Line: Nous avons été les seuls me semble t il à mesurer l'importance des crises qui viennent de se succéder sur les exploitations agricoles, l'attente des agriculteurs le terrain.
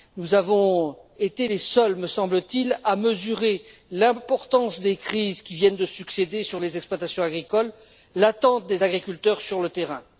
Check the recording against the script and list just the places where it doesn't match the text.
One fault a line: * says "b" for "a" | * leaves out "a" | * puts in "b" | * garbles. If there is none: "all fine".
* puts in "sur"